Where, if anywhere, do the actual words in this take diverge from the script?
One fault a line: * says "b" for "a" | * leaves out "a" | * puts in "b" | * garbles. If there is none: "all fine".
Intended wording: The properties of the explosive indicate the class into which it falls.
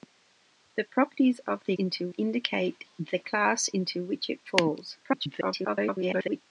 * says "into" for "explosive"
* garbles